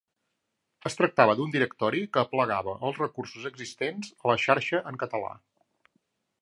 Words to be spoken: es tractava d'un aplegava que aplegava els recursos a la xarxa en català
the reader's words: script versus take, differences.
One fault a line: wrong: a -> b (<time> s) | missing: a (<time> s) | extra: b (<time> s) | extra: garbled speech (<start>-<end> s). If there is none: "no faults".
wrong: aplegava -> directori (1.6 s)
extra: existents (3.5 s)